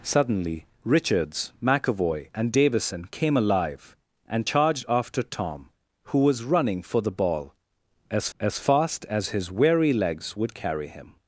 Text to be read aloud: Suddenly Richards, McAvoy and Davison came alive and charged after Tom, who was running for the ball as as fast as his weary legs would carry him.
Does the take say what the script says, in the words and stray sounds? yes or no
yes